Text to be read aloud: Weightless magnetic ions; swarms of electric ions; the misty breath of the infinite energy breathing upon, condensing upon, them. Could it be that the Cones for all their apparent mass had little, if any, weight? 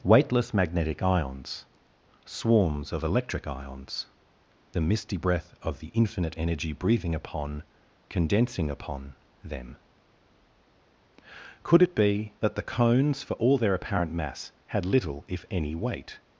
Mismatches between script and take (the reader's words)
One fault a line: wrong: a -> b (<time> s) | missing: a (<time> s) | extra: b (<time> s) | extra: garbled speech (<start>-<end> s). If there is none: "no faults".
no faults